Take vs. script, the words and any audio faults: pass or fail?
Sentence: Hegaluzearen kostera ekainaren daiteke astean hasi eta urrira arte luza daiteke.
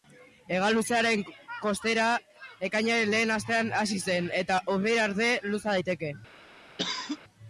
fail